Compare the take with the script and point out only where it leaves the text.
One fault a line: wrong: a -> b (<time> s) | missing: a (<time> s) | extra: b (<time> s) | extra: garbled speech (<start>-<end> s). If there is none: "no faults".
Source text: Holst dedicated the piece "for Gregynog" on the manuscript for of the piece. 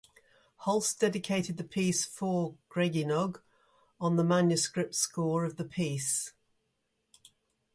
wrong: for -> score (4.9 s)